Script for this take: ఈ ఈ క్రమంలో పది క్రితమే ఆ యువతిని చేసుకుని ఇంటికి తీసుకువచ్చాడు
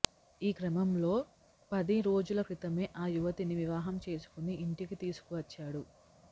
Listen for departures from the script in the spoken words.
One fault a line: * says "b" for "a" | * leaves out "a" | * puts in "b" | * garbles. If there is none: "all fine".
* leaves out "ఈ"
* puts in "రోజుల"
* puts in "వివాహం"